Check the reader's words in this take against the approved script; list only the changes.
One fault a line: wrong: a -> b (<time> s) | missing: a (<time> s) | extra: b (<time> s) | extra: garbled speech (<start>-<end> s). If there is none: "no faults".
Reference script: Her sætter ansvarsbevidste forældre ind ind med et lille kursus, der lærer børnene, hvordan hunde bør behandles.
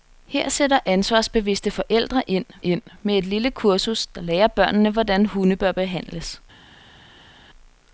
no faults